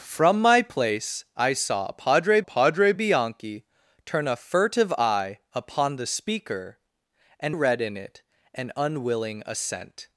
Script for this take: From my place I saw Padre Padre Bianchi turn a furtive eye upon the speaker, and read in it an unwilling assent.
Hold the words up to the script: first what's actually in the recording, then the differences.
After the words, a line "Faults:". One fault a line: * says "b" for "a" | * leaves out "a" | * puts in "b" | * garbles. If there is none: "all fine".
From my place I saw Padre Padre Bianchi turn a furtive eye upon the speaker, and read in it an unwilling assent.
Faults:
all fine